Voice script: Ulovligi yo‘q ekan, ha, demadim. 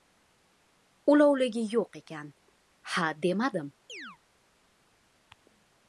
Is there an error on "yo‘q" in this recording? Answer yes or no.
no